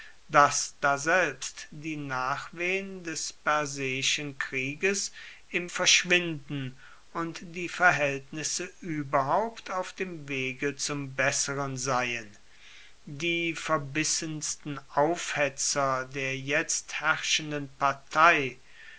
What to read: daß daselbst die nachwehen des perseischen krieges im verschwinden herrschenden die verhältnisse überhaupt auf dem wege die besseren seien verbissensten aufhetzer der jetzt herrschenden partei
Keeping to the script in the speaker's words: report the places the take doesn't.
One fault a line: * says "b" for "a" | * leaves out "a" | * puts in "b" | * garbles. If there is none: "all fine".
* says "und" for "herrschenden"
* says "zum" for "die"
* puts in "die"